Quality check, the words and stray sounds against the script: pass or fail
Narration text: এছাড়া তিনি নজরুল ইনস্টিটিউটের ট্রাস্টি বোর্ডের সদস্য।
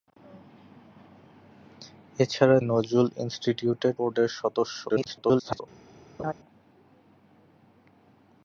fail